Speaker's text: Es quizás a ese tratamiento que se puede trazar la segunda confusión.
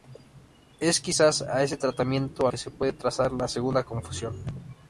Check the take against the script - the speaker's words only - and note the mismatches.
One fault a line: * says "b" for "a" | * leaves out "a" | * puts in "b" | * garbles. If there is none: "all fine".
all fine